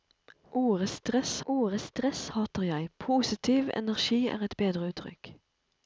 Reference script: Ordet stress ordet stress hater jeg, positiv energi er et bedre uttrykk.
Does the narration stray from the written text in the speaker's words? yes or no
no